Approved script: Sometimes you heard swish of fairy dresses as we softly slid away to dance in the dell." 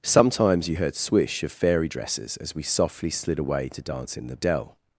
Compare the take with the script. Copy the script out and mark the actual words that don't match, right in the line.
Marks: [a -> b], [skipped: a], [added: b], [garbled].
Sometimes you heard swish of fairy dresses as we softly slid away to dance in the dell."